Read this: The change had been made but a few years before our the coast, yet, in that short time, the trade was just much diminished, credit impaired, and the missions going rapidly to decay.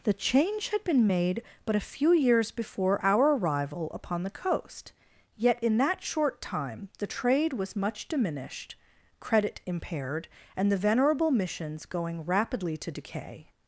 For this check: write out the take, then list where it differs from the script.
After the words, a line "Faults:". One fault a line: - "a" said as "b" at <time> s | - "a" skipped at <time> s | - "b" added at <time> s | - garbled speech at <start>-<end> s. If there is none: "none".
The change had been made but a few years before our arrival upon the coast, yet, in that short time, the trade was much diminished, credit impaired, and the venerable missions going rapidly to decay.
Faults:
- "arrival upon" added at 3.3 s
- "just" skipped at 7.7 s
- "venerable" added at 10.8 s